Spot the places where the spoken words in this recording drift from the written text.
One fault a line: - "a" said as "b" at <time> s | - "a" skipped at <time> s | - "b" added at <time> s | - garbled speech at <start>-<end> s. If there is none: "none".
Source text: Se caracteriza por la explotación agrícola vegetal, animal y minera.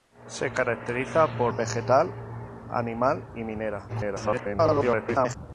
- "la explotación agrícola" skipped at 1.5 s
- garbled speech at 3.9-5.4 s